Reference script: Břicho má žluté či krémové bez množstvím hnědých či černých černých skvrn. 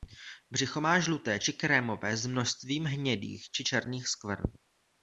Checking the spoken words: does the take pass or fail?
fail